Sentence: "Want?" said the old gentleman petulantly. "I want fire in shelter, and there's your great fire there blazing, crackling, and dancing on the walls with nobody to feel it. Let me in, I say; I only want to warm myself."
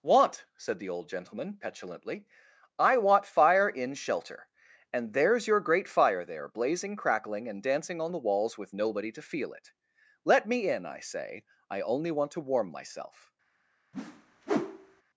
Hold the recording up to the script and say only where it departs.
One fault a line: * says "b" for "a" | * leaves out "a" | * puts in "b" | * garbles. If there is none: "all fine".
all fine